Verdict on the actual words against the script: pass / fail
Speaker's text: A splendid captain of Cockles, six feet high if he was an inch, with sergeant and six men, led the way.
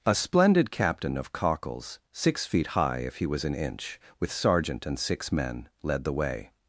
pass